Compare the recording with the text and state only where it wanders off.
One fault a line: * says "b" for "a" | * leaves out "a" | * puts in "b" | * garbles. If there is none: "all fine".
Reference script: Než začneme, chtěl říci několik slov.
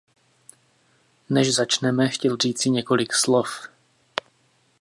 all fine